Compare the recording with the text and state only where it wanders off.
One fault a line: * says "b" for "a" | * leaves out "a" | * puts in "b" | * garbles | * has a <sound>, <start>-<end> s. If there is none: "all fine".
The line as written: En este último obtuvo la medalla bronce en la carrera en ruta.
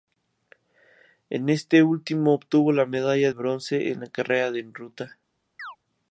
* has a chirp, 5.6-5.8 s